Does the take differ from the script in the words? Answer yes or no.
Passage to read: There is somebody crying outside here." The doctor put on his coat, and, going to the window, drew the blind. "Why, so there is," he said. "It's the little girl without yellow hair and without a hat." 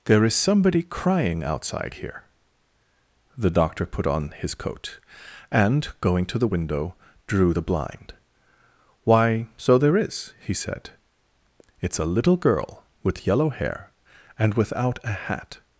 yes